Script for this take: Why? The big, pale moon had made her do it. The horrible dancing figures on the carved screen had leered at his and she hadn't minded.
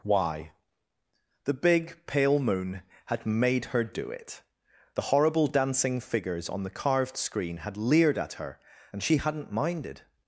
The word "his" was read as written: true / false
false